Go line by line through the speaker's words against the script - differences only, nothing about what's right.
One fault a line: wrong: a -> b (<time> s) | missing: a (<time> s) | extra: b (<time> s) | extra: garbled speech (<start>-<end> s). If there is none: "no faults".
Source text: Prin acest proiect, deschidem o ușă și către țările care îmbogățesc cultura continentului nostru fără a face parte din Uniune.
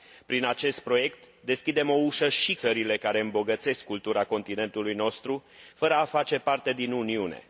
missing: către (2.5 s)